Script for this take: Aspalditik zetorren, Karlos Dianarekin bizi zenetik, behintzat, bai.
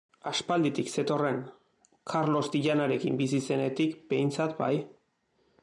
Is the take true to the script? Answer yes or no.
yes